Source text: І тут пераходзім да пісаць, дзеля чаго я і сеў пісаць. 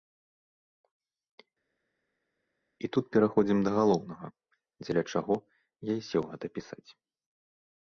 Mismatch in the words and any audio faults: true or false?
true